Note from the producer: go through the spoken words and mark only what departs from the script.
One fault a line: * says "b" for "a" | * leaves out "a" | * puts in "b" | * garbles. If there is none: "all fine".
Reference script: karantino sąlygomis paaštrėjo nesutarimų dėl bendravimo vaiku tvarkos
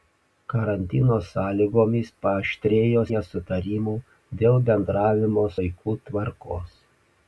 all fine